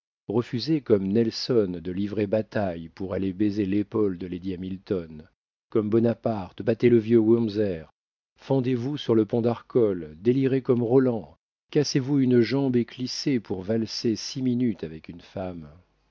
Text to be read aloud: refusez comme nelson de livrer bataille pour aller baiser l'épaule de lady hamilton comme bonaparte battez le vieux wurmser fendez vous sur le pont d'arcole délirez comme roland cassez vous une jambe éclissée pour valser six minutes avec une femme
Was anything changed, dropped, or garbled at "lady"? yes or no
no